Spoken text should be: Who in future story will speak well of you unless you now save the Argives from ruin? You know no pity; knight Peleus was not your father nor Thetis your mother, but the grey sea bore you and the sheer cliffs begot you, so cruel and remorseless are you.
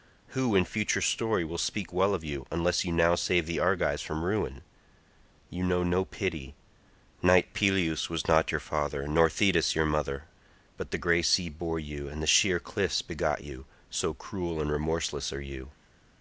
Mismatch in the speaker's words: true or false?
false